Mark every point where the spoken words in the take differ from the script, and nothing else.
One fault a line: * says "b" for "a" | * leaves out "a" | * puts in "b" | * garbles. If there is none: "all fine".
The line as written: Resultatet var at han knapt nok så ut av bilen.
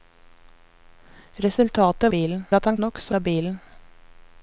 * says "bilen" for "var"
* leaves out "knapt"
* leaves out "ut"